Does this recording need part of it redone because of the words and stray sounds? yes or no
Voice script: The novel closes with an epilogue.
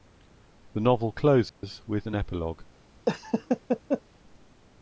yes